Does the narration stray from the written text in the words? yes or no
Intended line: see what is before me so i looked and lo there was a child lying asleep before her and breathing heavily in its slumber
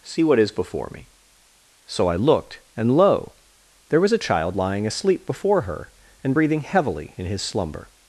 yes